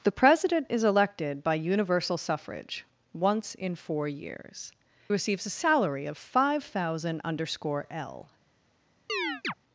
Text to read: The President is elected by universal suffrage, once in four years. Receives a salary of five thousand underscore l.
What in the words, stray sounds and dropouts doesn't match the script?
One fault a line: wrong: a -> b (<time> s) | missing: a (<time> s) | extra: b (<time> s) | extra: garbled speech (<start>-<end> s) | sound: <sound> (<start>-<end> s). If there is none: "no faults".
sound: chirp (9.1-9.5 s)